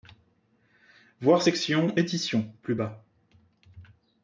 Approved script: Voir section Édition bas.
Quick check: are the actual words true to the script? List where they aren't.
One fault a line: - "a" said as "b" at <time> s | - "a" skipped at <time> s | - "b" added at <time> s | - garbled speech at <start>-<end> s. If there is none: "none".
- "plus" added at 2.6 s